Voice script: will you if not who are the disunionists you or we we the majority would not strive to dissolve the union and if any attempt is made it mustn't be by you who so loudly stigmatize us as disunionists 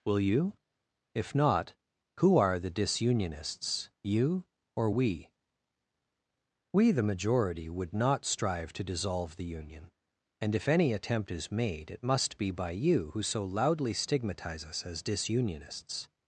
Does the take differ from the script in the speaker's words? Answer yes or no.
yes